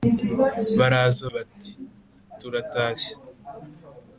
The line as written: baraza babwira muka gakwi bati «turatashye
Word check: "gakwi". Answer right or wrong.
wrong